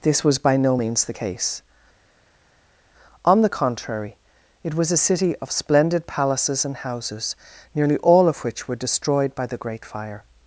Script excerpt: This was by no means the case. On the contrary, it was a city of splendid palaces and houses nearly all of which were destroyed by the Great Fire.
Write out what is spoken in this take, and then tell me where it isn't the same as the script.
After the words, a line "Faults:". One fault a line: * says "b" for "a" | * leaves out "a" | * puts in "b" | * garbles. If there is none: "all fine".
This was by no means the case. On the contrary, it was a city of splendid palaces and houses nearly all of which were destroyed by the Great Fire.
Faults:
all fine